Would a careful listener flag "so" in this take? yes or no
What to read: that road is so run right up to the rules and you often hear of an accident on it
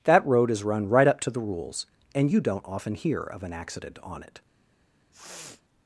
yes